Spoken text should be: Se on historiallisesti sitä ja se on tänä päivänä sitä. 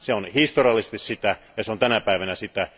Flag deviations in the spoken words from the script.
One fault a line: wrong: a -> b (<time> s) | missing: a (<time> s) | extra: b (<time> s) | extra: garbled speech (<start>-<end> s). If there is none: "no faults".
no faults